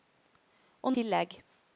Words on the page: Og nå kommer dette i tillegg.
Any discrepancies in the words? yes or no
yes